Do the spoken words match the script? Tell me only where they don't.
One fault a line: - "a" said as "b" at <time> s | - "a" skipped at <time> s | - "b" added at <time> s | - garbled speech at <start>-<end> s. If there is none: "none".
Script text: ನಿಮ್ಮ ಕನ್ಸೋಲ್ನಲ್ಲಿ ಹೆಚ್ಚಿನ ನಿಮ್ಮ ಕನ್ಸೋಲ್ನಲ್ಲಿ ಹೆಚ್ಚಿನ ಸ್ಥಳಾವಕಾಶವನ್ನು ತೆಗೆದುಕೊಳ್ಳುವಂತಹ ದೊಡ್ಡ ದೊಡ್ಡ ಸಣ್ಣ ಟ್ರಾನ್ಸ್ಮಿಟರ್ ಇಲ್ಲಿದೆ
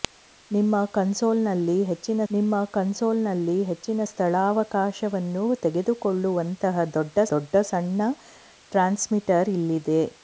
none